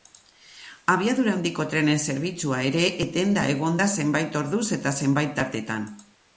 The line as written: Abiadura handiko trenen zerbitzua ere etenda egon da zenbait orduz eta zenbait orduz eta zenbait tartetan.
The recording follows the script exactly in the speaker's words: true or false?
false